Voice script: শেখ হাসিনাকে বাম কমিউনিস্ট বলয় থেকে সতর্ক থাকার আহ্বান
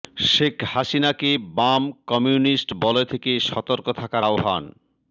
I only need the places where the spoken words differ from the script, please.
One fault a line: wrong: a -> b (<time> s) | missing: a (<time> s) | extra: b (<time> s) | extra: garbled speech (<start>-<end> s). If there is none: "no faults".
no faults